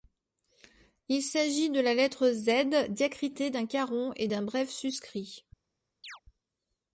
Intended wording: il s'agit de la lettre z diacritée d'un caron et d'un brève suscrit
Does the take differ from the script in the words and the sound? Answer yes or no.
yes